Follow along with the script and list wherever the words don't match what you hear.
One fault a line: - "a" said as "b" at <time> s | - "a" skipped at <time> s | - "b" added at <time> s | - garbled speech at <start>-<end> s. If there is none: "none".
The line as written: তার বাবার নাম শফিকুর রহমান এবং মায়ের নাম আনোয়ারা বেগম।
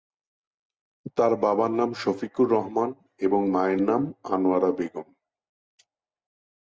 none